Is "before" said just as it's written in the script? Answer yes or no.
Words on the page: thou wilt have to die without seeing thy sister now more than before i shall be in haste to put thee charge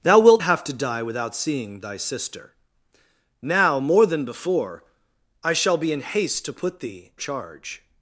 yes